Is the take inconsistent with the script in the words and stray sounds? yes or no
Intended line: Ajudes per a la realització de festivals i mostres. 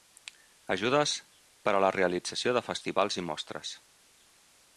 no